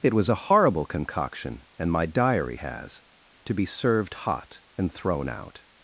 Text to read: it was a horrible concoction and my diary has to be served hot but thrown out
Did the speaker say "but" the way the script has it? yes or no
no